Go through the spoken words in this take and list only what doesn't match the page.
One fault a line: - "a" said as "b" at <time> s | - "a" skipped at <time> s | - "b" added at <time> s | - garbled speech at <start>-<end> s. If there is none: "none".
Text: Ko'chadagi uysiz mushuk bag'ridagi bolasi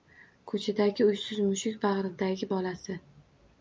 none